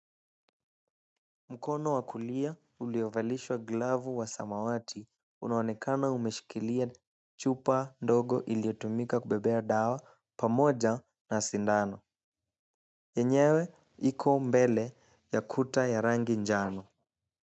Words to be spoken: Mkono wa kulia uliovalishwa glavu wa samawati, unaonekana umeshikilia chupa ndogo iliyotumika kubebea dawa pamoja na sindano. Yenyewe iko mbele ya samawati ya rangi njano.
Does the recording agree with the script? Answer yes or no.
no